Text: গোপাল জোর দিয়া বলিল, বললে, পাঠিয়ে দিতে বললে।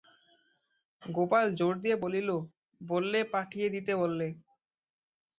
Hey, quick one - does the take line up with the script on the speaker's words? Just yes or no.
yes